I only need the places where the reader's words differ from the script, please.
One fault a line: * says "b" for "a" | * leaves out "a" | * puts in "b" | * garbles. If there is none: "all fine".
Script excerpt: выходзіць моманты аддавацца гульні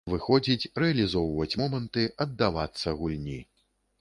* puts in "рэалізоўваць"